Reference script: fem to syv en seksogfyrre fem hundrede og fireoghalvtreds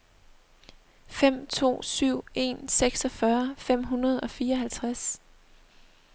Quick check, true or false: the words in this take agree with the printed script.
true